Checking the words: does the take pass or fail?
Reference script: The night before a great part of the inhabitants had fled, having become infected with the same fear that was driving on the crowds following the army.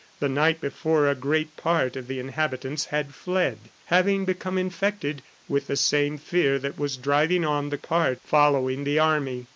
fail